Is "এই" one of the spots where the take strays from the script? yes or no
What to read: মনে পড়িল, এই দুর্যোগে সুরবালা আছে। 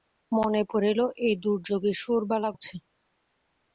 no